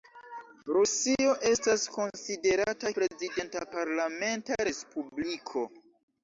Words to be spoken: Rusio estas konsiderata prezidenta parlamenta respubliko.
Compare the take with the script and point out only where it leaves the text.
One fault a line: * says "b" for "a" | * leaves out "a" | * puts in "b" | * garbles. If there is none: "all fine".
all fine